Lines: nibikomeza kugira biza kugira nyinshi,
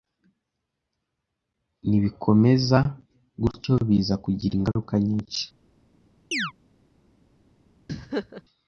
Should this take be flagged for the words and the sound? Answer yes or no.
yes